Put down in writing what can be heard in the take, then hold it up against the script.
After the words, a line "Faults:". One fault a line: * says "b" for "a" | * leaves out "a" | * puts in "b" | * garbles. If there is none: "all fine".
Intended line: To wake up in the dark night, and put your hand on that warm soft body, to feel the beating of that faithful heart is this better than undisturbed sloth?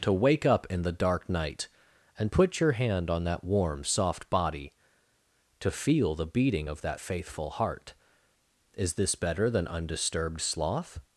To wake up in the dark night, and put your hand on that warm soft body, to feel the beating of that faithful heart is this better than undisturbed sloth?
Faults:
all fine